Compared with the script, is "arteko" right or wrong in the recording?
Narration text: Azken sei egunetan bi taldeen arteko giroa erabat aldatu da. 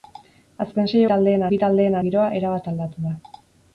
wrong